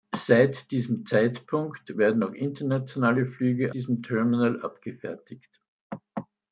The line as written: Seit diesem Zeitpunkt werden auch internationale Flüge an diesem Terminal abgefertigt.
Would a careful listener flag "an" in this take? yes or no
yes